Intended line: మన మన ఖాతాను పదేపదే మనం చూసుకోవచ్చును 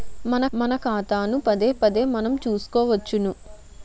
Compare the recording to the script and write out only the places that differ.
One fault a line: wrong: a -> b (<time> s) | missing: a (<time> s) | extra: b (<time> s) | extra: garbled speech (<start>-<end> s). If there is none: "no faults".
no faults